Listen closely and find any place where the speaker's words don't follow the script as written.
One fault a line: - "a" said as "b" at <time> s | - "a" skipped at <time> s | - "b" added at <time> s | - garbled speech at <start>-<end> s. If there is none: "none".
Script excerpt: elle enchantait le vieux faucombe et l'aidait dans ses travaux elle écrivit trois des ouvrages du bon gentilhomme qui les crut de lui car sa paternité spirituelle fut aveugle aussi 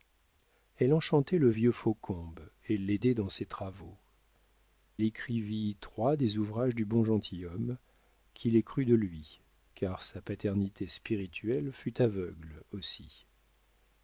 - "elle" skipped at 4.0 s